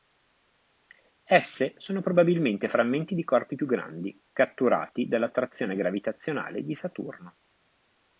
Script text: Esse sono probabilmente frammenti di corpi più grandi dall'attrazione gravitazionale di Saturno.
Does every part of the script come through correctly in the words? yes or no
no